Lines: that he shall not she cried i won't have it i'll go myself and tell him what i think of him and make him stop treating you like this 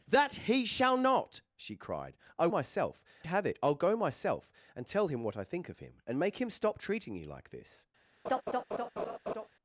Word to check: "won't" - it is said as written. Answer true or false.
false